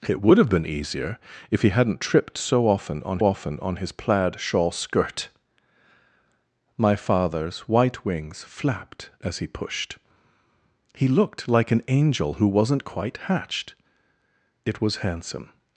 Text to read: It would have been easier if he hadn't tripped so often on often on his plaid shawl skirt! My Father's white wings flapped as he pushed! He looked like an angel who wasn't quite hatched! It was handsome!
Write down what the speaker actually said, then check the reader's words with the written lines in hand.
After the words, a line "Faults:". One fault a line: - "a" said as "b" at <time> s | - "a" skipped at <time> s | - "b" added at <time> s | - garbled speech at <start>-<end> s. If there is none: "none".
It would have been easier if he hadn't tripped so often on often on his plaid shawl skirt! My Father's white wings flapped as he pushed! He looked like an angel who wasn't quite hatched! It was handsome!
Faults:
none